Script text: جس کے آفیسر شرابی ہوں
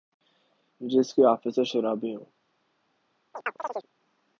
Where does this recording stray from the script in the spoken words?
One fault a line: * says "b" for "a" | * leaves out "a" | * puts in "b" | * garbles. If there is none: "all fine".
all fine